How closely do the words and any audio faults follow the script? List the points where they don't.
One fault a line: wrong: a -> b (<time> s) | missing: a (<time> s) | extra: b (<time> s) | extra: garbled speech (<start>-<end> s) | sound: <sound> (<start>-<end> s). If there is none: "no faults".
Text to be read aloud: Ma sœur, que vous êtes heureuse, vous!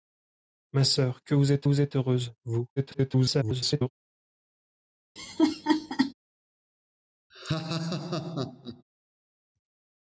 extra: vous êtes (1.6 s)
extra: garbled speech (2.8-3.9 s)
sound: laugh (5.2-6.1 s)
sound: laugh (7.3-8.8 s)